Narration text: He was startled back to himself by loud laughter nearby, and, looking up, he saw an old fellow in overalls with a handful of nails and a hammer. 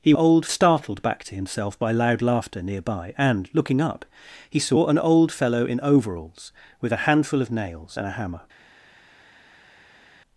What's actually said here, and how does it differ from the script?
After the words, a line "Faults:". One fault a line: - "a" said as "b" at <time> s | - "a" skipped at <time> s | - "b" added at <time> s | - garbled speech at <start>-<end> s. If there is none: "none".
He old startled back to himself by loud laughter nearby, and, looking up, he saw an old fellow in overalls with a handful of nails and a hammer.
Faults:
- "was" said as "old" at 0.1 s